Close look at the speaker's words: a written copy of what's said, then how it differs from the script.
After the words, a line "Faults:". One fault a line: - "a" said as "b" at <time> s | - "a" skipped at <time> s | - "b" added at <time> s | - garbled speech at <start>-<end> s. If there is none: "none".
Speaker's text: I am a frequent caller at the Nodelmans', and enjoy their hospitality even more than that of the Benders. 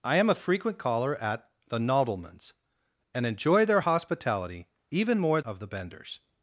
I am a frequent caller at the Nodelmans', and enjoy their hospitality even more of the Benders.
Faults:
- "than that" skipped at 5.4 s